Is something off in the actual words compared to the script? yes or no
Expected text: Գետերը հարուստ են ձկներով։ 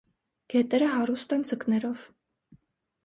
no